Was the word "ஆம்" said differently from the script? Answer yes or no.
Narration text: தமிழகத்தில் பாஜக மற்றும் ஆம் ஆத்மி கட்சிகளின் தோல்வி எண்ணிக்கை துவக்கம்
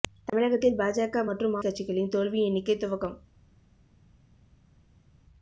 yes